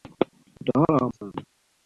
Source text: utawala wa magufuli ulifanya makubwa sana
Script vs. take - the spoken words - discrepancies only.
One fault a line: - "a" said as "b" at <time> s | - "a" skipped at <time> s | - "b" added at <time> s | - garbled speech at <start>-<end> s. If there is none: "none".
- "magufuli ulifanya makubwa" skipped at 1.1 s